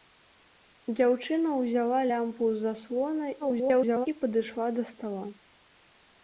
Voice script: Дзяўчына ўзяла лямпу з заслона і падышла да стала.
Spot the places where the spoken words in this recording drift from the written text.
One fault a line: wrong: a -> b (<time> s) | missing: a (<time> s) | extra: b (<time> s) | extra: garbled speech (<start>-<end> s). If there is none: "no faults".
extra: garbled speech (3.4-4.1 s)